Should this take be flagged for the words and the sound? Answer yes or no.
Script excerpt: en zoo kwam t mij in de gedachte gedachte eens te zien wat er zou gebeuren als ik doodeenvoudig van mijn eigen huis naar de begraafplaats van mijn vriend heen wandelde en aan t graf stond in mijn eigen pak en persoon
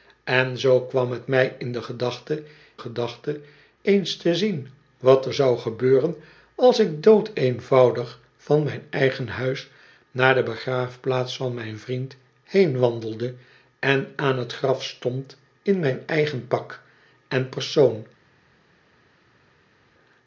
no